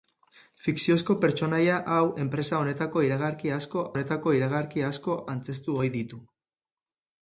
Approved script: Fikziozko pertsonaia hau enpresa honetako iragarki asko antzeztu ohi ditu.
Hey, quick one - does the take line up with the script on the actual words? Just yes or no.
no